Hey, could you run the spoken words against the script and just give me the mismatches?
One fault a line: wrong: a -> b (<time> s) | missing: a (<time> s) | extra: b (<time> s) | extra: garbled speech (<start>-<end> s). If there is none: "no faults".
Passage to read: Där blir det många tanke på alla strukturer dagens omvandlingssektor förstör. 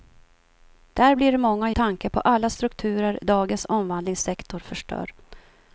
no faults